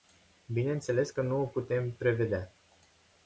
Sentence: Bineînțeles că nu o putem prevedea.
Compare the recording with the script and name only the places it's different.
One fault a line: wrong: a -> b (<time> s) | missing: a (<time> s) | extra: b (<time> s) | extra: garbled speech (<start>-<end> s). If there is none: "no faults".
no faults